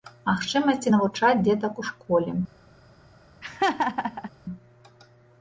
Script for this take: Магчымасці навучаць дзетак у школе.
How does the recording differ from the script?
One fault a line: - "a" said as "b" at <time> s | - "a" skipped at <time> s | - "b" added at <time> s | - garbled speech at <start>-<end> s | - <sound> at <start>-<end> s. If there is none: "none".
- laugh at 3.4-4.3 s